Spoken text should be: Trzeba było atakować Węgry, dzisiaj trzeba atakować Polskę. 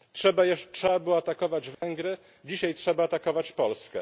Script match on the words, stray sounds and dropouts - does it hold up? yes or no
no